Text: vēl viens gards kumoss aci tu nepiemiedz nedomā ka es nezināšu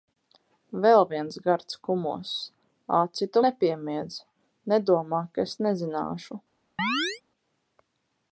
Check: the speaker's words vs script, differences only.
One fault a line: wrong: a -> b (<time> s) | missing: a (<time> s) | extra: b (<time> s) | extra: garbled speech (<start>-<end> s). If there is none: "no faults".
no faults